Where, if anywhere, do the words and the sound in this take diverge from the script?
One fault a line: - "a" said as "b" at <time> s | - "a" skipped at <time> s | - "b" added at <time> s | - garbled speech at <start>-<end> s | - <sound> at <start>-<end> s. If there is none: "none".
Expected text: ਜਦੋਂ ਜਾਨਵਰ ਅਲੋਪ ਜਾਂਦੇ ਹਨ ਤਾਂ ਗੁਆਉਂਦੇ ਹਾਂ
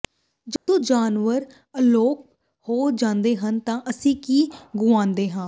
- dropout at 0.6-0.7 s
- "ਹੋ" added at 2.7 s
- "ਅਸੀਂ ਕੀ" added at 3.9 s